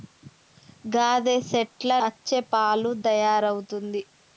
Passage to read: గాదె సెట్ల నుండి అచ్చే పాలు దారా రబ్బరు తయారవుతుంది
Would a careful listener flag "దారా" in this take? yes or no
yes